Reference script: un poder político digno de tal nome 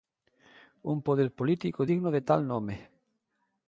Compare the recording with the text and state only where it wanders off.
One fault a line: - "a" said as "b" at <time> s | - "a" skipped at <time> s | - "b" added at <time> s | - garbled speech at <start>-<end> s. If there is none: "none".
none